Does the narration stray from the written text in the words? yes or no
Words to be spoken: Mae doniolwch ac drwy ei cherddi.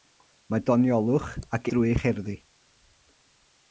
no